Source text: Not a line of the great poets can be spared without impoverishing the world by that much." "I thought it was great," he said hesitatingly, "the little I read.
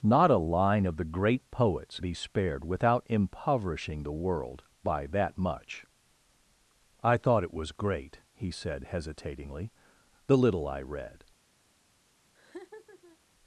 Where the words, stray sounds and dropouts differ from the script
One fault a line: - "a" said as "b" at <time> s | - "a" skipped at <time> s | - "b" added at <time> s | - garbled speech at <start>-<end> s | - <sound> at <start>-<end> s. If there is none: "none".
- "can" skipped at 2.0 s
- laugh at 12.3-13.2 s